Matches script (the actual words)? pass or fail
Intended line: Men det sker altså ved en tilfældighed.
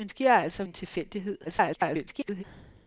fail